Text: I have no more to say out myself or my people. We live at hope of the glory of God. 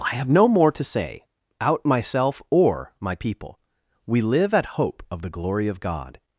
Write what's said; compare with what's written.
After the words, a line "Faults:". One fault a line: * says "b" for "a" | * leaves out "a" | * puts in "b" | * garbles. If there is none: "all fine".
I have no more to say out myself or my people. We live at hope of the glory of God.
Faults:
all fine